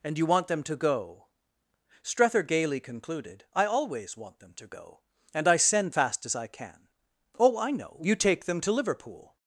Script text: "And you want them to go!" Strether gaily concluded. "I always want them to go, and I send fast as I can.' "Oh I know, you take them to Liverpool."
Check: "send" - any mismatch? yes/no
no